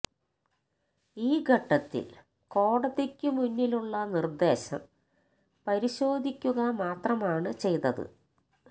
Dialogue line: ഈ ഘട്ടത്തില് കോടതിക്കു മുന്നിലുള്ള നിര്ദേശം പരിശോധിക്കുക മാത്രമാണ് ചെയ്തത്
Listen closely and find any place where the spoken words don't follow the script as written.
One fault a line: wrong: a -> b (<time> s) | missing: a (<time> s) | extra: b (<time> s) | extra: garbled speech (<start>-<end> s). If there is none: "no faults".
no faults